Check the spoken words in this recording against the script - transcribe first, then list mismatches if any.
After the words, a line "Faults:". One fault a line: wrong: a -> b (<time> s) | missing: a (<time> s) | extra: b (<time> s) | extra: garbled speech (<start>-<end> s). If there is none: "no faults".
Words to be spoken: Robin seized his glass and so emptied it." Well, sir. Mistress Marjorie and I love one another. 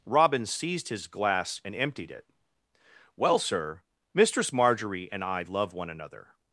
Robin seized his glass and emptied it." Well, sir. Mistress Marjorie and I love one another.
Faults:
missing: so (1.8 s)